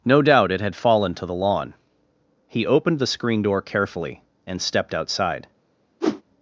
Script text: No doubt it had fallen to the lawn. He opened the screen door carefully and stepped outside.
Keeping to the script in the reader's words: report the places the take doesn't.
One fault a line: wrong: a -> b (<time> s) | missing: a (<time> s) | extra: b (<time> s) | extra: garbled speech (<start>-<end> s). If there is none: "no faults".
no faults